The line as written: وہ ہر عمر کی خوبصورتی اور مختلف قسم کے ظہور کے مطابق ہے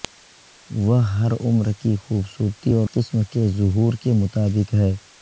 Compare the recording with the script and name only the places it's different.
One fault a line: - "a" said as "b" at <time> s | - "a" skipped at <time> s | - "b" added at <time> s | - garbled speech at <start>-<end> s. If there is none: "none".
- "مختلف" skipped at 2.9 s